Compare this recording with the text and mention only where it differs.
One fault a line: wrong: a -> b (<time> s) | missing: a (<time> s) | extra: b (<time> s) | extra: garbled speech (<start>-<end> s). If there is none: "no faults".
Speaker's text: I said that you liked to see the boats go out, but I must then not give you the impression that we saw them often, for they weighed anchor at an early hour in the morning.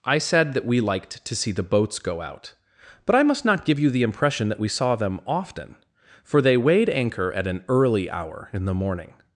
wrong: you -> we (0.7 s)
missing: then (3.5 s)